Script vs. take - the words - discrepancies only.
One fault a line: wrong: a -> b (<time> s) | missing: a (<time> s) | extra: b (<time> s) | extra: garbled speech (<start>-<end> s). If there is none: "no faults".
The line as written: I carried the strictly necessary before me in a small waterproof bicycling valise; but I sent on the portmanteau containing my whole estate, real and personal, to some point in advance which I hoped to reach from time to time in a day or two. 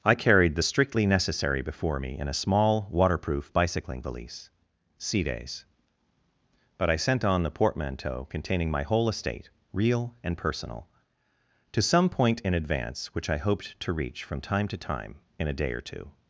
extra: sea days (5.0 s)